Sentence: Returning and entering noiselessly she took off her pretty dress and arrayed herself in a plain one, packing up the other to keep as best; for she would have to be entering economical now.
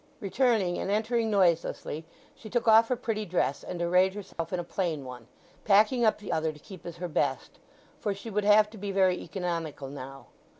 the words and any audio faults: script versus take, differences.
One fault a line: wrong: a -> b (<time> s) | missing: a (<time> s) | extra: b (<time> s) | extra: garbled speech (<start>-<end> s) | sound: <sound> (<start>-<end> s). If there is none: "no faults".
sound: dropout (4.3-4.4 s)
extra: her (7.0 s)
wrong: entering -> very (8.9 s)